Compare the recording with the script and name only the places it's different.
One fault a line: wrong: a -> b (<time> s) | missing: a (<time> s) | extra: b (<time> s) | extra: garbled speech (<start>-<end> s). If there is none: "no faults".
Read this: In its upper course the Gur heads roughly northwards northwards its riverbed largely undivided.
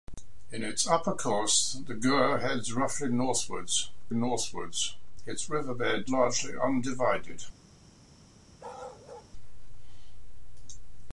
no faults